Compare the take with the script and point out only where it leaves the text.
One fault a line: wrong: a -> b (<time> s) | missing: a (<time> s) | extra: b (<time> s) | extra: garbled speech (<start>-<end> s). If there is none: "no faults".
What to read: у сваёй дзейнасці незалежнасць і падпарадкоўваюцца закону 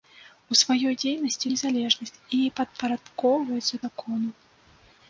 no faults